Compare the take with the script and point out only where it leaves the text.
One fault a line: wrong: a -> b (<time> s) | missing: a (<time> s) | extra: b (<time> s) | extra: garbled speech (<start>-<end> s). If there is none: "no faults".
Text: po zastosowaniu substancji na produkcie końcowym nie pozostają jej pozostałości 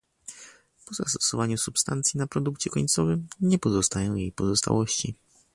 no faults